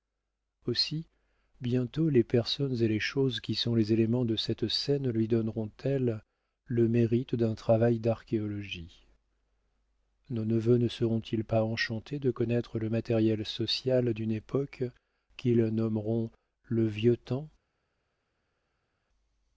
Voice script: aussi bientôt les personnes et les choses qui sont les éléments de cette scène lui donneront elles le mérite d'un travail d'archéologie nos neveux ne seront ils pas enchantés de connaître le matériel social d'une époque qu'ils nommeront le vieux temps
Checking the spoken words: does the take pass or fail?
pass